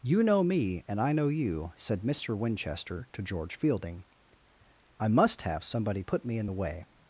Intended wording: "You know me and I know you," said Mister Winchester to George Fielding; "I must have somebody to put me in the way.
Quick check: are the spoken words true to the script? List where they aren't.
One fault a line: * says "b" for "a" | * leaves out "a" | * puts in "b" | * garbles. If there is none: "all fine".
* leaves out "to"